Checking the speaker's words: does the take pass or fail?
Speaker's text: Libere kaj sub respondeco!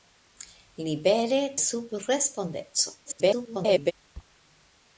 fail